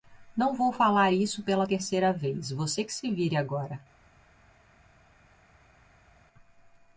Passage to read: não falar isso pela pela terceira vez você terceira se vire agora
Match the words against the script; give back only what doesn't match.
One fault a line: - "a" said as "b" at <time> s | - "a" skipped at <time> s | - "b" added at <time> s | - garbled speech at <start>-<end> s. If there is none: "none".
- "vou" added at 0.6 s
- "pela" skipped at 1.7 s
- "terceira" said as "que" at 2.8 s